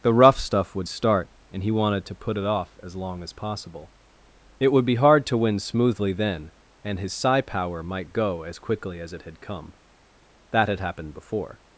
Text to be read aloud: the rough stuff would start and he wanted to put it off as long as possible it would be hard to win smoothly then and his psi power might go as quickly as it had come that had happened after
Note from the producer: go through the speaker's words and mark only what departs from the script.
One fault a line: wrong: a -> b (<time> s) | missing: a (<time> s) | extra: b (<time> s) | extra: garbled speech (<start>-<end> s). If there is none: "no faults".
wrong: after -> before (11.1 s)